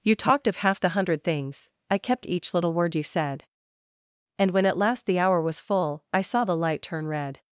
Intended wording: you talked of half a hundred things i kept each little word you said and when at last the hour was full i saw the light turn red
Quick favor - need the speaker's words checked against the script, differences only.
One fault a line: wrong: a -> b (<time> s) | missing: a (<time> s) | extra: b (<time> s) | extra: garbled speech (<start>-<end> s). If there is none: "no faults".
wrong: a -> the (0.8 s)